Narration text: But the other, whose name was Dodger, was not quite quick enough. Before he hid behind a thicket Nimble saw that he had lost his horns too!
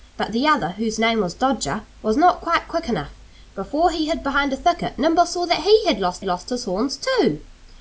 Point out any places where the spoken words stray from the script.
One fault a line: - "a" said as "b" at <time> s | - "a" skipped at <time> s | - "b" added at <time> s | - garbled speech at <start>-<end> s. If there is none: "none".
- "lost" added at 6.2 s